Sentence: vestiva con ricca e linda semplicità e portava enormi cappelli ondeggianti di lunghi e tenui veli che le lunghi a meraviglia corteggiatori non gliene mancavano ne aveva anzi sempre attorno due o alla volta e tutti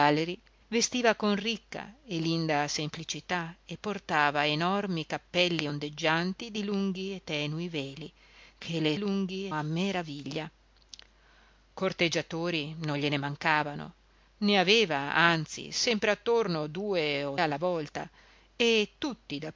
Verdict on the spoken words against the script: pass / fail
pass